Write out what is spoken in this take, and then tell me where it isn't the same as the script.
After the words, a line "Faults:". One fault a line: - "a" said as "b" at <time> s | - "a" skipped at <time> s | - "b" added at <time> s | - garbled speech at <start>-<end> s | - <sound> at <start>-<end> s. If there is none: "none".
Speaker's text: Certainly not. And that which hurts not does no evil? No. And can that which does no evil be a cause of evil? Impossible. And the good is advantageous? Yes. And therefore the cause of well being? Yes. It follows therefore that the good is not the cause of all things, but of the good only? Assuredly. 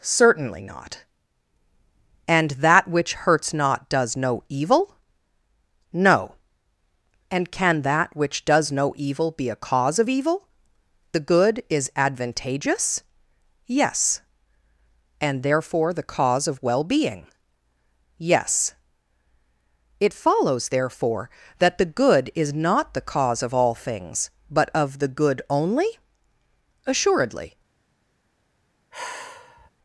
Certainly not. And that which hurts not does no evil? No. And can that which does no evil be a cause of evil? The good is advantageous? Yes. And therefore the cause of well being? Yes. It follows therefore that the good is not the cause of all things, but of the good only? Assuredly.
Faults:
- "Impossible And" skipped at 10.5 s
- sigh at 28.9-29.7 s